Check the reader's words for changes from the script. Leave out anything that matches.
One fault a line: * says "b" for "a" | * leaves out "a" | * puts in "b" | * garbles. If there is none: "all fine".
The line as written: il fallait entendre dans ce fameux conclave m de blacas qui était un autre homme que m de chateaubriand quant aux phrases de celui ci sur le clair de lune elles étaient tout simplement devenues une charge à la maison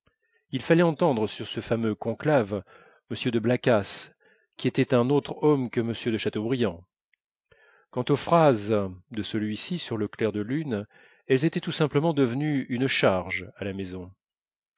* says "sur" for "dans"